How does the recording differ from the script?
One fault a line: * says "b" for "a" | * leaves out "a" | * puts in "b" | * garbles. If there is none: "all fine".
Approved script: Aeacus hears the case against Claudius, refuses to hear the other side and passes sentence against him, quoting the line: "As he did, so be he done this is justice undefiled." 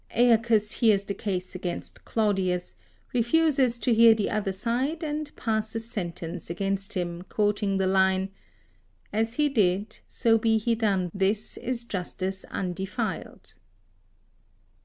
all fine